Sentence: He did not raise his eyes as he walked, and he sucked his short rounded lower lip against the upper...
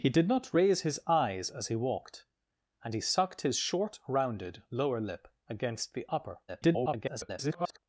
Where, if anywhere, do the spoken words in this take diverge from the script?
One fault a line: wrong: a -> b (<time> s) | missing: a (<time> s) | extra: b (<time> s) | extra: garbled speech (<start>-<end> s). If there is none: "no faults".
extra: garbled speech (6.5-7.8 s)